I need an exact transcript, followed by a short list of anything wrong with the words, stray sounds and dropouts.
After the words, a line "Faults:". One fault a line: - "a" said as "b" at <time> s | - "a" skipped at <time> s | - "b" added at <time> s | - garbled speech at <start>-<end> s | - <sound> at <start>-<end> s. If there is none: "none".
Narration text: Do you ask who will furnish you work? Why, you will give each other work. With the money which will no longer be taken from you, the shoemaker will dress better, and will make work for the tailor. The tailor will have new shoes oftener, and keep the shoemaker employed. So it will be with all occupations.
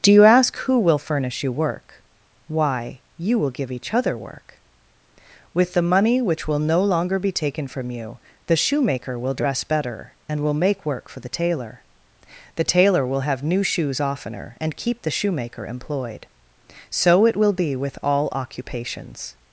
Do you ask who will furnish you work? Why, you will give each other work. With the money which will no longer be taken from you, the shoemaker will dress better, and will make work for the tailor. The tailor will have new shoes oftener, and keep the shoemaker employed. So it will be with all occupations.
Faults:
none